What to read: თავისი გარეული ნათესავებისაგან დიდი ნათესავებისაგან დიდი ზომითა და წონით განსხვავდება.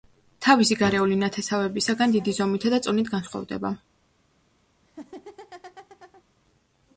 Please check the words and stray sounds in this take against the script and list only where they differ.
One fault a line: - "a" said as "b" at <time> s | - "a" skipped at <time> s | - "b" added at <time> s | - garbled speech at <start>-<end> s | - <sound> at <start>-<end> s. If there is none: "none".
- "ნათესავებისაგან დიდი" skipped at 2.4 s
- laugh at 4.8-6.2 s